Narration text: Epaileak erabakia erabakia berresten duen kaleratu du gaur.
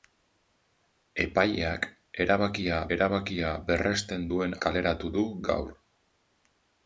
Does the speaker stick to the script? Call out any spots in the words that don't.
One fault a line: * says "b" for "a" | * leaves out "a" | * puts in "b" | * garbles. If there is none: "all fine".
all fine